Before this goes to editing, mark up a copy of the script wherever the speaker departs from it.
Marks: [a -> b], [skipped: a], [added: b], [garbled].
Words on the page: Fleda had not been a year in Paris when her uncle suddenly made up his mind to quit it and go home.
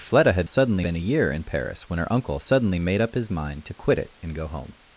Fleda had [not -> suddenly] been a year in Paris when her uncle suddenly made up his mind to quit it and go home.